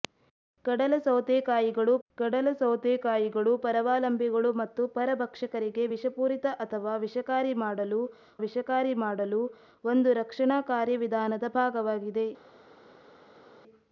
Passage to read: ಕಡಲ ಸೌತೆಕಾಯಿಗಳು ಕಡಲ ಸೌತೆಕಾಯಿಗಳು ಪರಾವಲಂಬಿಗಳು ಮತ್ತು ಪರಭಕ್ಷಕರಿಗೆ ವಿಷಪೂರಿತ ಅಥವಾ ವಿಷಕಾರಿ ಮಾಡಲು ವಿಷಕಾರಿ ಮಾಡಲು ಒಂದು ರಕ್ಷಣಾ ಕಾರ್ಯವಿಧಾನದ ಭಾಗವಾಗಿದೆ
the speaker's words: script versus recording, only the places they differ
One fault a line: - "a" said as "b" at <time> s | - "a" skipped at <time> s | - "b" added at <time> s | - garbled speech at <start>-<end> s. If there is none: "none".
none